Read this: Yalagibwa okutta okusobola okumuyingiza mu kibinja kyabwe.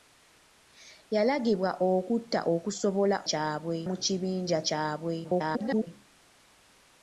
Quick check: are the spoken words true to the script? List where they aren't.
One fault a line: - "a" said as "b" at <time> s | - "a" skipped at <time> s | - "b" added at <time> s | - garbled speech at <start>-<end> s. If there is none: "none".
- "okumuyingiza" said as "kyabwe" at 3.3 s
- garbled speech at 5.2-5.9 s